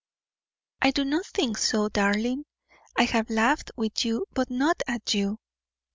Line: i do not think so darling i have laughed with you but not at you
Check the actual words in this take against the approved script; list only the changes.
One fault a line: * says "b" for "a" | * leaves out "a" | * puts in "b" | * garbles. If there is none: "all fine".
all fine